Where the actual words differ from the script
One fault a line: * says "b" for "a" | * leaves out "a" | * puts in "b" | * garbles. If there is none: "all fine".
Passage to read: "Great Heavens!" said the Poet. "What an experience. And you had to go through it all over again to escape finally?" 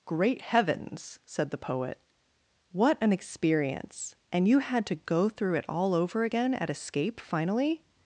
* says "at" for "to"